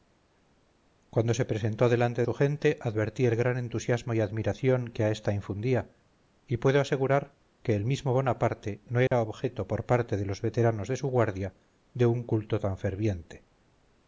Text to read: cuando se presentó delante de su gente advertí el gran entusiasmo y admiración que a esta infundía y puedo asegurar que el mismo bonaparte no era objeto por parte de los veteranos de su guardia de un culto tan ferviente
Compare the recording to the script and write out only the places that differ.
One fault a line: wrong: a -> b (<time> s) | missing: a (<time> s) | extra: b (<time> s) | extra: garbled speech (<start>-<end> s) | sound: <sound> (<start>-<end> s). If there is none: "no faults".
missing: de (2.2 s)
sound: dropout (9.1-9.1 s)